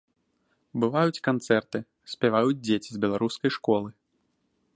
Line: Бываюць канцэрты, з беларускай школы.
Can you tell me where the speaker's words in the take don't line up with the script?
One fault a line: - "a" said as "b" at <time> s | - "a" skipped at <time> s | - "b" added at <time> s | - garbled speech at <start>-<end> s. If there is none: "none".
- "спяваюць дзеці" added at 2.1 s